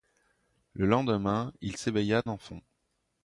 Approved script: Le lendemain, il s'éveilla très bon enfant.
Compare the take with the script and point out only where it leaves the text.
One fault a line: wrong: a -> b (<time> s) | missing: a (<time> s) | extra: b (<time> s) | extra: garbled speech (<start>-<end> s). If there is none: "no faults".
missing: très bon (2.2 s)